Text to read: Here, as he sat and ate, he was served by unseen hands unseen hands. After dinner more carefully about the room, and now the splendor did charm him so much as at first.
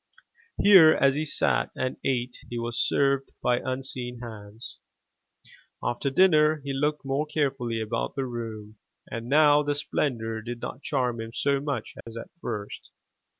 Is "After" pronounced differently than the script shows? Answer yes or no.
yes